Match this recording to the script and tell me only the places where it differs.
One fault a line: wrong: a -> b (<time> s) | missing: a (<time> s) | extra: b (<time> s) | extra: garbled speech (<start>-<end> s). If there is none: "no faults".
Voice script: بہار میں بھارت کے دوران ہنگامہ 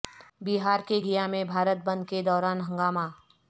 extra: کے گیا (0.9 s)
extra: بند (1.8 s)